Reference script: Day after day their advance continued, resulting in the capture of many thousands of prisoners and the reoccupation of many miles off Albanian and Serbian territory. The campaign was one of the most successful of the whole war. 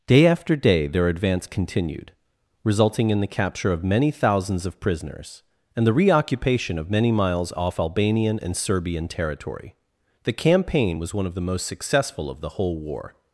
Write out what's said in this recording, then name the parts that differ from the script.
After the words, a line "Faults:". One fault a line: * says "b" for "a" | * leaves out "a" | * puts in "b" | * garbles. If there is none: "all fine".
Day after day their advance continued, resulting in the capture of many thousands of prisoners and the reoccupation of many miles off Albanian and Serbian territory. The campaign was one of the most successful of the whole war.
Faults:
all fine